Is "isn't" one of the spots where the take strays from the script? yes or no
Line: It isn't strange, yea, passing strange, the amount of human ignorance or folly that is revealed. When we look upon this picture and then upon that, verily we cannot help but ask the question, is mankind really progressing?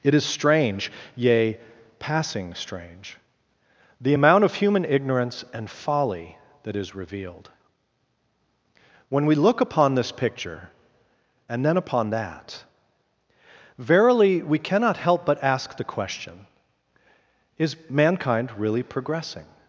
yes